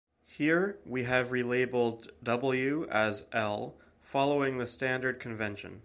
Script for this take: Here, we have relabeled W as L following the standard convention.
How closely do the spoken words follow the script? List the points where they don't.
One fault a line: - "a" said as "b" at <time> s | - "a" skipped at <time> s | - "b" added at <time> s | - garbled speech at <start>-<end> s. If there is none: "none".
none